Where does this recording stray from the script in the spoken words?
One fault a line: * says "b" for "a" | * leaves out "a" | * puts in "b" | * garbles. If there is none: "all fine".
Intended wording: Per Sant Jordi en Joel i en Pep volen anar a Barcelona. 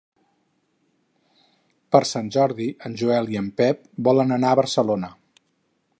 all fine